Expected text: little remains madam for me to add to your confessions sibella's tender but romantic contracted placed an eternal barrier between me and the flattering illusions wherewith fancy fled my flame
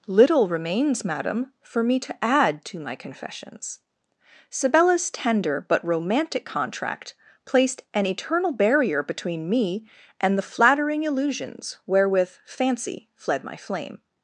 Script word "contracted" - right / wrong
wrong